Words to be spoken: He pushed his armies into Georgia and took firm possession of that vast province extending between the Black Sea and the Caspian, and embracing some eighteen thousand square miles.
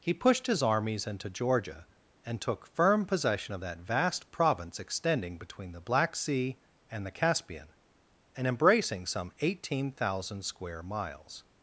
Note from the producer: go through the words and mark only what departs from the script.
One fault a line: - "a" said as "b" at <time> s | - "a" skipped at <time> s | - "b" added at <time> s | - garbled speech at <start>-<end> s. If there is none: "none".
none